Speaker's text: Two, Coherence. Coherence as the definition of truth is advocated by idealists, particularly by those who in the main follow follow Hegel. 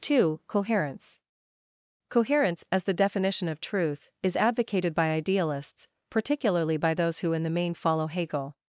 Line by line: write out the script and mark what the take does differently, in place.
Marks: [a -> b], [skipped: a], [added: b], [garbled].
Two, Coherence. Coherence as the definition of truth is advocated by idealists, particularly by those who in the main follow [skipped: follow] Hegel.